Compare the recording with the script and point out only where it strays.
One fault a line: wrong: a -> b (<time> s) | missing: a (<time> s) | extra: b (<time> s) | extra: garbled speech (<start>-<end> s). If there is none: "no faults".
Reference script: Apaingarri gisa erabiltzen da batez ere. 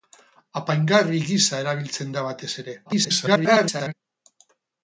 extra: garbled speech (2.9-3.9 s)